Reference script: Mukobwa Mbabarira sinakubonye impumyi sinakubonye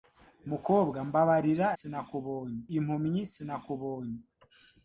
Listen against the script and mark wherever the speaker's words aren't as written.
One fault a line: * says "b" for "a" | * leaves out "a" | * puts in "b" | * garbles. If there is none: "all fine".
all fine